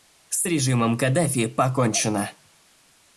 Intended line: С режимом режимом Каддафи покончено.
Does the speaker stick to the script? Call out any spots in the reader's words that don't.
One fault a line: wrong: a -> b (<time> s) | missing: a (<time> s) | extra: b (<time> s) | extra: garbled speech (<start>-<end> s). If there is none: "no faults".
missing: режимом (1.0 s)